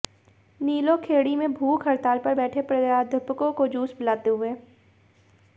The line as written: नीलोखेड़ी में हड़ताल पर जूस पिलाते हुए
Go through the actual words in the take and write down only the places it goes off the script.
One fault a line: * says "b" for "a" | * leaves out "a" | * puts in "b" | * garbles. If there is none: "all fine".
* puts in "भूख"
* puts in "बैठे प्राध्यापकों को"